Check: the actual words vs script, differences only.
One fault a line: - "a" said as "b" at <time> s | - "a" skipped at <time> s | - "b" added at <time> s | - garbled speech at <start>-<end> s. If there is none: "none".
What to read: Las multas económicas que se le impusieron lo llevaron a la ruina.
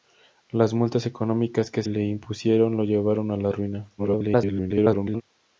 - "se" skipped at 1.8 s
- garbled speech at 4.0-5.2 s